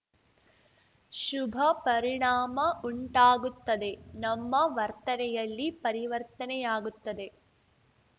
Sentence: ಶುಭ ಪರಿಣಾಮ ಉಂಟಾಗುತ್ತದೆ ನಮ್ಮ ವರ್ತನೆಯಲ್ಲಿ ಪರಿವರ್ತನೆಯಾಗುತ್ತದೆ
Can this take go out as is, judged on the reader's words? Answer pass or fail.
pass